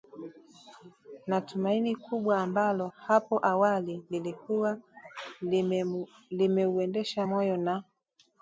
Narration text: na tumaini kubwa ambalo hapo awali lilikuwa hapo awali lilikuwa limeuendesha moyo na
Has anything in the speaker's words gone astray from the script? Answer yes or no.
yes